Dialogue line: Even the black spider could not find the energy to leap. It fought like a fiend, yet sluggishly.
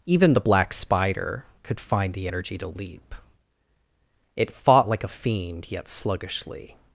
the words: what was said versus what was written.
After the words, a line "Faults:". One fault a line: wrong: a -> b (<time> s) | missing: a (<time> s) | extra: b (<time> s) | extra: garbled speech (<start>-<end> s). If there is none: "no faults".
Even the black spider could find the energy to leap. It fought like a fiend, yet sluggishly.
Faults:
missing: not (1.8 s)